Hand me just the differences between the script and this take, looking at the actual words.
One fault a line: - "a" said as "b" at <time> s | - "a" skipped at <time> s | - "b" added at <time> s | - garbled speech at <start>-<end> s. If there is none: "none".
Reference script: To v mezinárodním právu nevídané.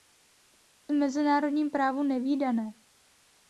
none